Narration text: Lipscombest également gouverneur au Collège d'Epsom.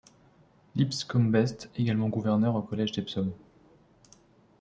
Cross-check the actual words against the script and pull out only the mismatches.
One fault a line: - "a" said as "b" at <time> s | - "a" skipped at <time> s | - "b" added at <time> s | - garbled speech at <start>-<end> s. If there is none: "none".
none